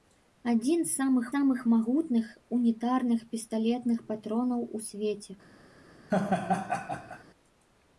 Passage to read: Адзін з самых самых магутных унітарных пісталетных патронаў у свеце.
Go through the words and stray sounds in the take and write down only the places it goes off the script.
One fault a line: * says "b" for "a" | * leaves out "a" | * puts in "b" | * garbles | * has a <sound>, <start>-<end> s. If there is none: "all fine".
* has a laugh, 6.1-7.2 s